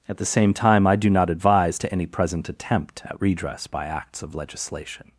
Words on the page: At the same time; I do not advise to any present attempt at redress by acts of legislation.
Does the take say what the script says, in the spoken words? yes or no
yes